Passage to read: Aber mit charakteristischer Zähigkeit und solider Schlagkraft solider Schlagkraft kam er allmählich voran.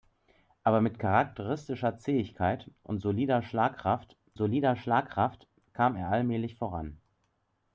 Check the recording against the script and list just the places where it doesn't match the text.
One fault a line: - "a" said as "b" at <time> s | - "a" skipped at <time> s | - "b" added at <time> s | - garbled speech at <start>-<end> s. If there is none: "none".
none